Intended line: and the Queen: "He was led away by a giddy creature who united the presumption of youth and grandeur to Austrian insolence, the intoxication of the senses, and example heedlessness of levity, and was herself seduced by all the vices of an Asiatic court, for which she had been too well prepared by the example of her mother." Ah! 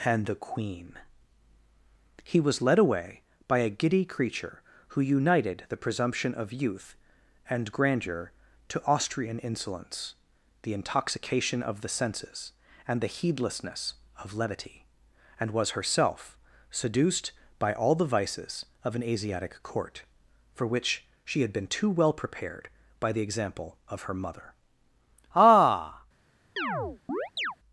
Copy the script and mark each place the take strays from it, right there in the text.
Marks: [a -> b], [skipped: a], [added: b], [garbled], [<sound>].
and the Queen: "He was led away by a giddy creature who united the presumption of youth and grandeur to Austrian insolence, the intoxication of the senses, and [example -> the] heedlessness of levity, and was herself seduced by all the vices of an Asiatic court, for which she had been too well prepared by the example of her mother." Ah! [chirp]